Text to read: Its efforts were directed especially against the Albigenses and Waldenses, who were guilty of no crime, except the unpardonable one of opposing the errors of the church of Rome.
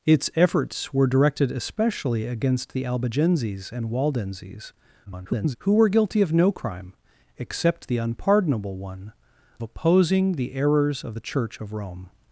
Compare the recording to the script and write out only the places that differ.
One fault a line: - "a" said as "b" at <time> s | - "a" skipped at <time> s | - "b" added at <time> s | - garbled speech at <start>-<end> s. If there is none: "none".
- garbled speech at 5.1-5.6 s
- "of" skipped at 9.1 s